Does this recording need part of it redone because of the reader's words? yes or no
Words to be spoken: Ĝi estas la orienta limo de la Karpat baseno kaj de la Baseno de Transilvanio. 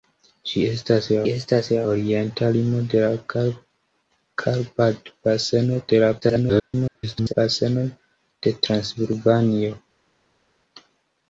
yes